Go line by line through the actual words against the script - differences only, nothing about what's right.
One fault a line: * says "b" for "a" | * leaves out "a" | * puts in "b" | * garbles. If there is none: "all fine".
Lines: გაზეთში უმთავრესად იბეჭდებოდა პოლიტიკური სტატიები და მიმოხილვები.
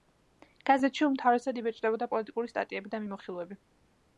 all fine